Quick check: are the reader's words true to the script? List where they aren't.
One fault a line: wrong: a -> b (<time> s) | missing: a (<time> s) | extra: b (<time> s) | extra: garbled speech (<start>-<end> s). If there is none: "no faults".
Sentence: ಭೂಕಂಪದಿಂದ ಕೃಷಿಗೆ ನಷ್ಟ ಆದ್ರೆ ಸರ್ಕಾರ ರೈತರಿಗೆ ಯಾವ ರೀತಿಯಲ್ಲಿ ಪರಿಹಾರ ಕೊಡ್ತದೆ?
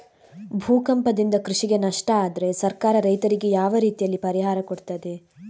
no faults